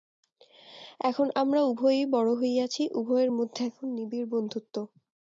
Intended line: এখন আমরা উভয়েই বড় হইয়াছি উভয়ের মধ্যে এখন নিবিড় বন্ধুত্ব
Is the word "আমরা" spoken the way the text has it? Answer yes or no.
yes